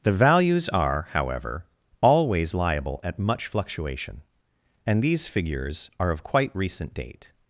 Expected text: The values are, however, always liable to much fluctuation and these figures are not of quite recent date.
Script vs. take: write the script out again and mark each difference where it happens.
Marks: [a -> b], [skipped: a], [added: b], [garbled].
The values are, however, always liable [to -> at] much fluctuation and these figures are [skipped: not] of quite recent date.